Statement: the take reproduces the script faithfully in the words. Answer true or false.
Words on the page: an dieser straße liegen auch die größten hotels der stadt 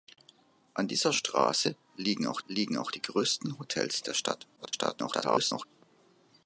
false